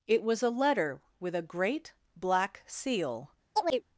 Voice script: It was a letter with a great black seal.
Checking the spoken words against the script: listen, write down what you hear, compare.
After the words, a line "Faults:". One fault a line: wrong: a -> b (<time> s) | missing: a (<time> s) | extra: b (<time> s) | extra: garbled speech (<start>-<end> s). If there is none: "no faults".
It was a letter with a great black seal.
Faults:
no faults